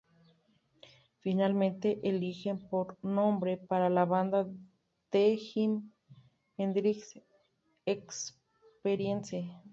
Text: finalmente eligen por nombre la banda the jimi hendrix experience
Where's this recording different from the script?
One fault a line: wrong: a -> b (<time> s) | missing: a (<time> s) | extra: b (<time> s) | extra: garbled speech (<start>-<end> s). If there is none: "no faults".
extra: para (3.6 s)